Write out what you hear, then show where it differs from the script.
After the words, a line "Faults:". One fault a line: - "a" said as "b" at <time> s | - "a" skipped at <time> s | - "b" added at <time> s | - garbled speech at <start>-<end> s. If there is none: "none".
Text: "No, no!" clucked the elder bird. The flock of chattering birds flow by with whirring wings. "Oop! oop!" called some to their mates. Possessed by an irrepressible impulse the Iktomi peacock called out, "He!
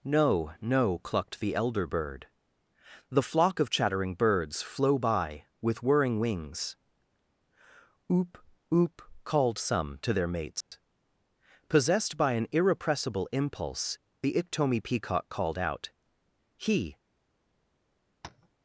"No, no!" clucked the elder bird. The flock of chattering birds flow by with whirring wings. "Oop! oop!" called some to their mates. Possessed by an irrepressible impulse the Iktomi peacock called out, "He!
Faults:
none